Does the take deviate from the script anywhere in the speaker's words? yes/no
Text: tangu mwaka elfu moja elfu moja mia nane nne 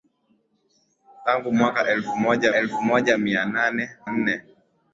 no